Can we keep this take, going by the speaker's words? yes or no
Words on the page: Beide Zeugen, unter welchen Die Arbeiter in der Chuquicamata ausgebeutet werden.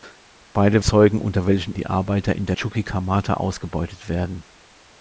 yes